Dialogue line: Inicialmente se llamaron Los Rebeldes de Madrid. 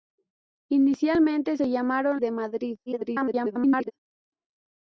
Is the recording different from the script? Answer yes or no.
yes